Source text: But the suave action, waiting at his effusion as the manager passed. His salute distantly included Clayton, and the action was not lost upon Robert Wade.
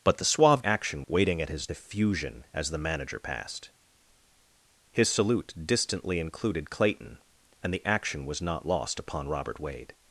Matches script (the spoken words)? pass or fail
pass